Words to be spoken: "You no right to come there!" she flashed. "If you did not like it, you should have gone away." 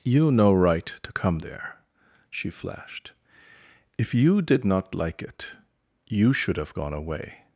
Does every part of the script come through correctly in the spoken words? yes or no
yes